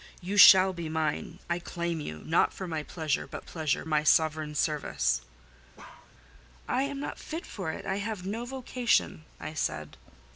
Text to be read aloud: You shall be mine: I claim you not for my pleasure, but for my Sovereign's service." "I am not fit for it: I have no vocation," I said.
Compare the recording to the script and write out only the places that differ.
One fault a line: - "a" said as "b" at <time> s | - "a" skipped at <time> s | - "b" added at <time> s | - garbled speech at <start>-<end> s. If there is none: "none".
- "for" said as "pleasure" at 3.4 s